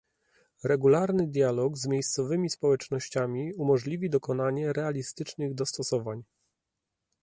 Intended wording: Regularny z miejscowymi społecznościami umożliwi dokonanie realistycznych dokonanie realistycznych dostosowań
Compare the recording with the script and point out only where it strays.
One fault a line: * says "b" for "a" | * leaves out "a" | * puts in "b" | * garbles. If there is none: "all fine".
* puts in "dialog"
* leaves out "dokonanie realistycznych"